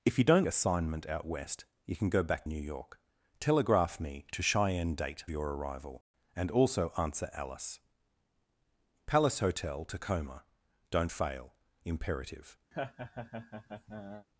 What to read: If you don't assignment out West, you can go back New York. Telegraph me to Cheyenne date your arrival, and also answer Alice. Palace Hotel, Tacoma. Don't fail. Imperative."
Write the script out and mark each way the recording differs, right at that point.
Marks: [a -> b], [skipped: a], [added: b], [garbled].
If you don't assignment out West, you can go back New York. Telegraph me to Cheyenne date your arrival, and also answer Alice. Palace Hotel, Tacoma. Don't fail. Imperative."